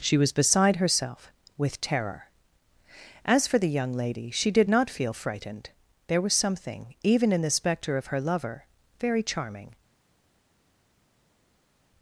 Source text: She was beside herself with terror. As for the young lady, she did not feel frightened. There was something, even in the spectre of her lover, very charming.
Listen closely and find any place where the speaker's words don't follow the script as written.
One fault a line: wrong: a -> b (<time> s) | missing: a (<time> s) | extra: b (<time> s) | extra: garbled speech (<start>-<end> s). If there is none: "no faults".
no faults